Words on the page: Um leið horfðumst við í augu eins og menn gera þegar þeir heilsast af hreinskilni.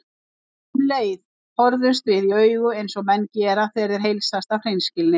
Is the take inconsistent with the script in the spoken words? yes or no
no